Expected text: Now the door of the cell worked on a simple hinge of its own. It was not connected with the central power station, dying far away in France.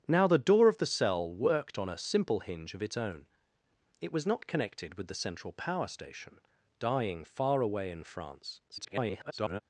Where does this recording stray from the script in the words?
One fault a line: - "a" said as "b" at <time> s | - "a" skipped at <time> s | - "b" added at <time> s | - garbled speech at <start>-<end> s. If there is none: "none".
- garbled speech at 8.7-9.6 s